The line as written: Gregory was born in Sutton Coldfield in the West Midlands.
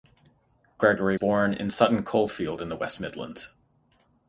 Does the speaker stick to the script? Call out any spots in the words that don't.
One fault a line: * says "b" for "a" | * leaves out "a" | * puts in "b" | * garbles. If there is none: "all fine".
* leaves out "was"